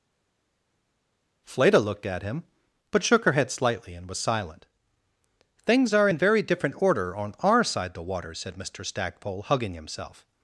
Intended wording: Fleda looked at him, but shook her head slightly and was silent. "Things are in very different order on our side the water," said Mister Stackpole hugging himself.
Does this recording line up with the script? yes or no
yes